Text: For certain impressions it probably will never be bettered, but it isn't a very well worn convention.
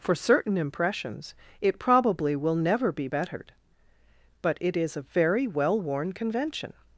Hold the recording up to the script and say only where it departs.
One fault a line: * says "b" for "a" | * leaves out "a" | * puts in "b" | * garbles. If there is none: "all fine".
* says "is" for "isn't"